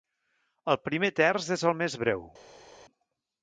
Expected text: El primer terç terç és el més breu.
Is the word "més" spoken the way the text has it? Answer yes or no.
yes